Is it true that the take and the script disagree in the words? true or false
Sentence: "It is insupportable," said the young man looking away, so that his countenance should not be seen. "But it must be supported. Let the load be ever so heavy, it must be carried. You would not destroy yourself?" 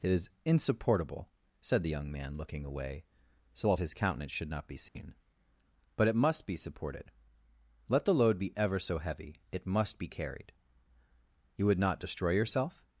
false